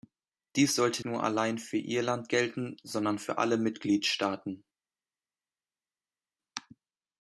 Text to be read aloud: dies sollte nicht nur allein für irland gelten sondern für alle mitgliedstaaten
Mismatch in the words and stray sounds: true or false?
true